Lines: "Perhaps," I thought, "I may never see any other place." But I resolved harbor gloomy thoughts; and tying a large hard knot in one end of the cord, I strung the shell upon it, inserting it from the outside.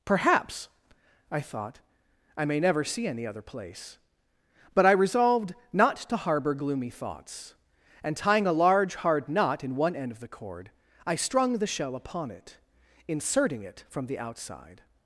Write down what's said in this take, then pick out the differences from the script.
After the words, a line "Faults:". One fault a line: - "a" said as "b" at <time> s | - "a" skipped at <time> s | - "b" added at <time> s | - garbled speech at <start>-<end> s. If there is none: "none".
"Perhaps," I thought, "I may never see any other place." But I resolved not to harbor gloomy thoughts; and tying a large hard knot in one end of the cord, I strung the shell upon it, inserting it from the outside.
Faults:
- "not to" added at 5.7 s